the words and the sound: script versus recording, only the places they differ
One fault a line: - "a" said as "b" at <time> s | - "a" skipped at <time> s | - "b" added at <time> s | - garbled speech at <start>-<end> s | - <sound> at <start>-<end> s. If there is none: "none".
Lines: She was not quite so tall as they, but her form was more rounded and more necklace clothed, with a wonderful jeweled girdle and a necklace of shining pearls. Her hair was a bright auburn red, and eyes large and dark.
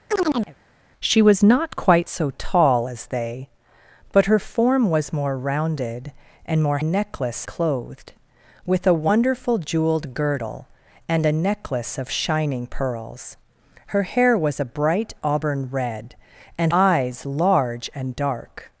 - chirp at 0.1-0.6 s